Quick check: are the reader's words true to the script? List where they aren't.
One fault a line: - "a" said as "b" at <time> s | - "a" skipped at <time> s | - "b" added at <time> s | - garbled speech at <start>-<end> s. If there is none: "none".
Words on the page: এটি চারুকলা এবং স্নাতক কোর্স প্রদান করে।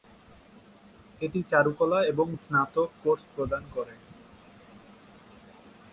none